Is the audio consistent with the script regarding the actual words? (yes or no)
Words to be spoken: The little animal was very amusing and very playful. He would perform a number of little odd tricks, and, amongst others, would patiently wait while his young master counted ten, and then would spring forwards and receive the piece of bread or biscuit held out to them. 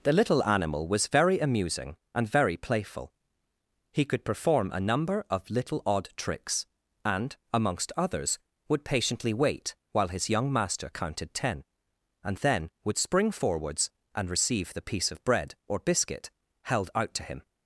no